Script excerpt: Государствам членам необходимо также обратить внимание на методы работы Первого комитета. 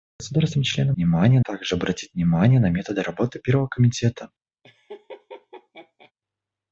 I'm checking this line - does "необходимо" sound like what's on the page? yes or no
no